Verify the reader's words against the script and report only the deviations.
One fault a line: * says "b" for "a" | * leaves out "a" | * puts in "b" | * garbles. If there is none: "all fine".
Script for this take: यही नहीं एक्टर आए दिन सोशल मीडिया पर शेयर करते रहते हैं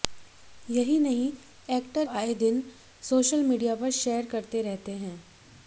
all fine